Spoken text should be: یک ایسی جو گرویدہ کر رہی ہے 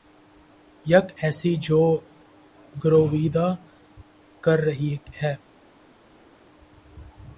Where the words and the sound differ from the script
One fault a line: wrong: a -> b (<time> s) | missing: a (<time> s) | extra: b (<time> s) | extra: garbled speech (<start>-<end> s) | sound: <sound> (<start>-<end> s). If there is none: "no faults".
no faults